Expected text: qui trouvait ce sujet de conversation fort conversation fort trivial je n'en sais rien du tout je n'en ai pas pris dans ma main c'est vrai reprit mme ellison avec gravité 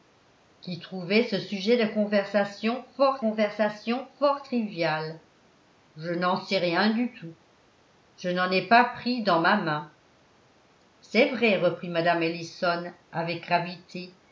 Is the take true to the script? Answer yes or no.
yes